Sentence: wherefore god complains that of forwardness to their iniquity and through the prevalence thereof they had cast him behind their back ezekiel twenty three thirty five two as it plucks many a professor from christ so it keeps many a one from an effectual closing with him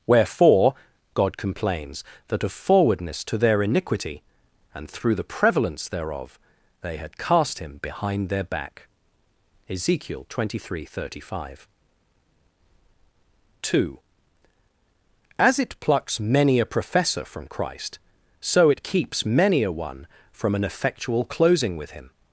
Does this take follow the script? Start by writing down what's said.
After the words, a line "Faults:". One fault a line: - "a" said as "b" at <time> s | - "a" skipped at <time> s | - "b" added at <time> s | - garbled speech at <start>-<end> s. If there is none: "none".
wherefore god complains that of forwardness to their iniquity and through the prevalence thereof they had cast him behind their back ezekiel twenty three thirty five two as it plucks many a professor from christ so it keeps many a one from an effectual closing with him
Faults:
none